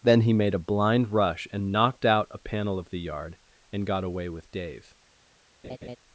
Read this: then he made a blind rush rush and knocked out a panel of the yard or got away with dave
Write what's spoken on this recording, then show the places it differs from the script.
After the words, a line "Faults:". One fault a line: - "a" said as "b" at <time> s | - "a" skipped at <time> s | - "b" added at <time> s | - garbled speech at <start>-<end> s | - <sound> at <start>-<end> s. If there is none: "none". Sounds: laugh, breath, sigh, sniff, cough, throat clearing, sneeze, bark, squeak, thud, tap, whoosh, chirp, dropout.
then he made a blind rush and knocked out a panel of the yard and got away with dave
Faults:
- "rush" skipped at 1.5 s
- "or" said as "and" at 3.7 s
- laugh at 5.6-6.0 s